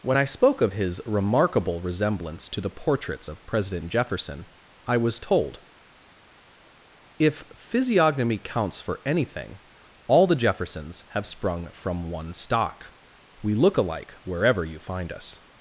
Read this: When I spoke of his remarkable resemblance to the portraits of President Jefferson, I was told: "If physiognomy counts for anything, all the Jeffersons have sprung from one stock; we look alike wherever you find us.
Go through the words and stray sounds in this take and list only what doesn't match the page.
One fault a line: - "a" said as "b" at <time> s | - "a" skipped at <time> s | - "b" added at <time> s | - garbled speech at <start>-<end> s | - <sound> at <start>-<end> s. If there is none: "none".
none